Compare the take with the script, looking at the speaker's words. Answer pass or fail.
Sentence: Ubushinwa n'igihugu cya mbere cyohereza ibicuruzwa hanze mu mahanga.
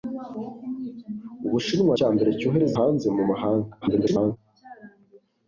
fail